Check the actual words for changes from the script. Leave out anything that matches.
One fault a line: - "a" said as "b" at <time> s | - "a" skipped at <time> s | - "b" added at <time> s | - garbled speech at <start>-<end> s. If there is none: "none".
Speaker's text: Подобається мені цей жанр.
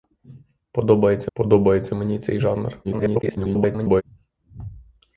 - "подобається" added at 1.3 s
- garbled speech at 2.8-4.0 s